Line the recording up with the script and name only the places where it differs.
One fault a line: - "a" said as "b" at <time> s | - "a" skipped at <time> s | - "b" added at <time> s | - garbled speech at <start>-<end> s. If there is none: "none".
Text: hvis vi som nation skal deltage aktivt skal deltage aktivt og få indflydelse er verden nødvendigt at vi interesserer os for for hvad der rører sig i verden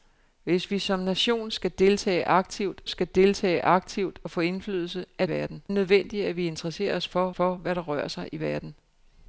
none